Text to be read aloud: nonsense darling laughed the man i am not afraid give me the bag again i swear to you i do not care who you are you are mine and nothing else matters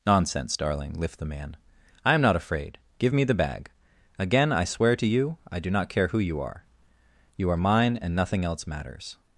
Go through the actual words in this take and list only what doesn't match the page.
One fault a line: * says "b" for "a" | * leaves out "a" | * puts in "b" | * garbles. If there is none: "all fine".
* says "lift" for "laughed"